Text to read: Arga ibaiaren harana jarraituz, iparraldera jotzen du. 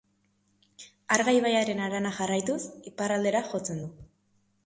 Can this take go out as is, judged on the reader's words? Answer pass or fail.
pass